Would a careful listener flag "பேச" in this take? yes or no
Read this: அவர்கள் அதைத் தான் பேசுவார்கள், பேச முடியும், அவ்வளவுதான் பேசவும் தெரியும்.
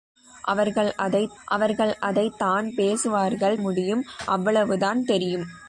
yes